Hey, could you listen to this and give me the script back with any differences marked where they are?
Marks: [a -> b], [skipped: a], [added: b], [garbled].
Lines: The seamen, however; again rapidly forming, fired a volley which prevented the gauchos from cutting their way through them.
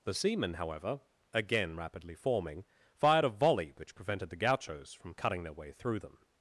The seamen, however; again rapidly forming, fired a volley which prevented the gauchos from cutting their way through them.